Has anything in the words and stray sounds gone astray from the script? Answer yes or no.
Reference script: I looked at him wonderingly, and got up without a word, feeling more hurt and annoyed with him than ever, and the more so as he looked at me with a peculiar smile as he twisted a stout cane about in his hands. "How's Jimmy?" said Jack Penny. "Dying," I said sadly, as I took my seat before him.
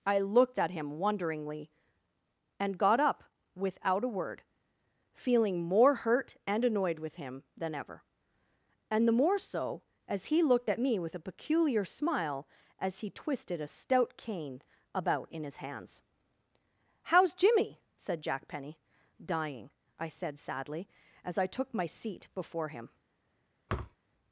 yes